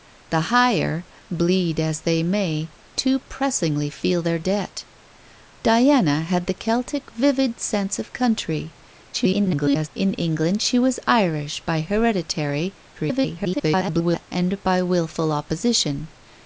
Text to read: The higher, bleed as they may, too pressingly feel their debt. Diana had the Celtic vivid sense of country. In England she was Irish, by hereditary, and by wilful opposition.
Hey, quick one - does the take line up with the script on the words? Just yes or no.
no